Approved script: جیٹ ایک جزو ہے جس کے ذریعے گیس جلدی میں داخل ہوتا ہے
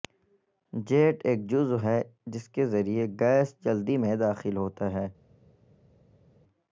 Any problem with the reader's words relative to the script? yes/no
no